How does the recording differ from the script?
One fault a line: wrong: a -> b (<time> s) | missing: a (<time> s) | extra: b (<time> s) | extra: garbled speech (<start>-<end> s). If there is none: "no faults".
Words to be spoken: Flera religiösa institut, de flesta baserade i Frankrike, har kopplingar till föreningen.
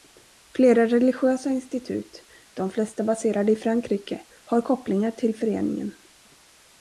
no faults